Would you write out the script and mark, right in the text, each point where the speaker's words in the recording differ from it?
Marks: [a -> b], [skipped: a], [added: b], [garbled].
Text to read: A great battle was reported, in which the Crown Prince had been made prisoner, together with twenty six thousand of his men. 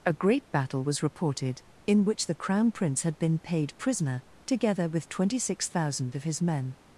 A great battle was reported, in which the Crown Prince had been [made -> paid] prisoner, together with twenty six thousand of his men.